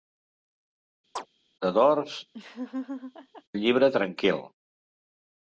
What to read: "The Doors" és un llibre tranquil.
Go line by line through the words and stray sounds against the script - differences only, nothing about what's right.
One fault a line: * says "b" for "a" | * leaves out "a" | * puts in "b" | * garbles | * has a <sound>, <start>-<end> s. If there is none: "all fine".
* has a chirp, 1.2-1.3 s
* leaves out "és"
* has a laugh, 2.3-3.4 s